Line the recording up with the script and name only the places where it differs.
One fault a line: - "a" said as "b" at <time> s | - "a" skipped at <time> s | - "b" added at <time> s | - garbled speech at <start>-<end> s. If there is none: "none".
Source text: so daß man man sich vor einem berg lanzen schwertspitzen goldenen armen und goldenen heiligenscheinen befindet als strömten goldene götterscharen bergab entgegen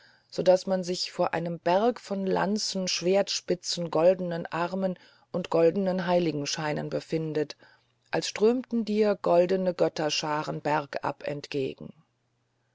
- "man" skipped at 0.8 s
- "von" added at 2.0 s
- "dir" added at 8.9 s